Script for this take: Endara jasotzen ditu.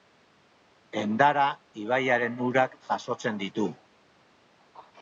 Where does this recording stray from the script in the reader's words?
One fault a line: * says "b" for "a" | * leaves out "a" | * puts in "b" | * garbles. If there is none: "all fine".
* puts in "ibaiaren urak"